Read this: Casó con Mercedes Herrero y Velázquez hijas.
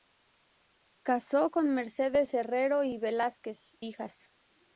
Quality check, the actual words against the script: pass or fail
pass